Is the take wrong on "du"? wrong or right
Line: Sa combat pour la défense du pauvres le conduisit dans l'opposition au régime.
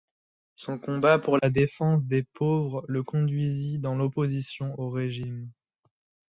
wrong